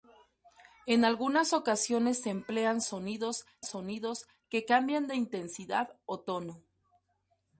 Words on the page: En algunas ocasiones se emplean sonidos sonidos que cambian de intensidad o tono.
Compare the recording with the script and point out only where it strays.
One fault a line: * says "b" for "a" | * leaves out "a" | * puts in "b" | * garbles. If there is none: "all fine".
all fine